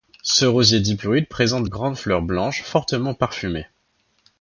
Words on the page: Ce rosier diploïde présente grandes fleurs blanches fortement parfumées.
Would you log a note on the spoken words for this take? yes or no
no